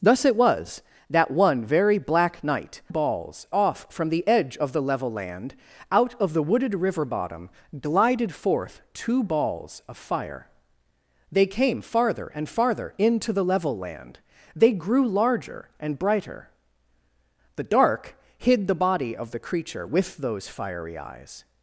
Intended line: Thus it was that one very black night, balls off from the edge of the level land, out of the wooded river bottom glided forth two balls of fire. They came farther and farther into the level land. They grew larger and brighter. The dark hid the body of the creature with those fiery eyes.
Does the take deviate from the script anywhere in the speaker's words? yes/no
no